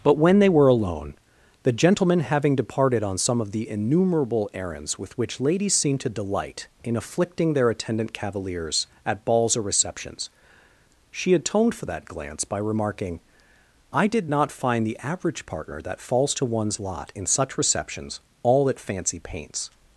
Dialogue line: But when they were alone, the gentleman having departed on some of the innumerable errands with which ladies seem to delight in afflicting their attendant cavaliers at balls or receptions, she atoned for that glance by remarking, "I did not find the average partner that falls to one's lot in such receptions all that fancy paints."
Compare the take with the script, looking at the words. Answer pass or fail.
pass